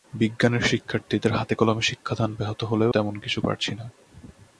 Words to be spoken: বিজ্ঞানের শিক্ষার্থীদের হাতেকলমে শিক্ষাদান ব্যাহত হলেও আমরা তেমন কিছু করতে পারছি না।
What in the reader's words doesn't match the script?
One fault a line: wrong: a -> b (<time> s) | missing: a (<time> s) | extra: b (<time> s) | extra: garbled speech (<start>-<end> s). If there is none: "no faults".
missing: আমরা (2.9 s)
missing: করতে (3.4 s)